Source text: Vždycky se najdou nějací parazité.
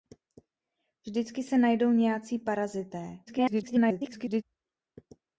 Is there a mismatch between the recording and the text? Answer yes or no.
yes